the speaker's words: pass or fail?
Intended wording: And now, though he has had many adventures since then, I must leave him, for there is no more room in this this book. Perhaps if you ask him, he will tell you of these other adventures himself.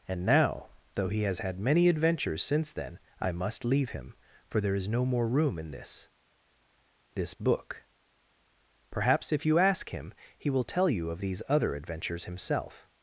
pass